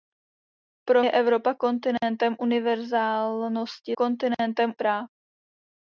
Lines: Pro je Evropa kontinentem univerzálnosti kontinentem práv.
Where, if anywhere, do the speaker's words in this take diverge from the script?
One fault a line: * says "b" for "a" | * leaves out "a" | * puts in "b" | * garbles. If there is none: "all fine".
all fine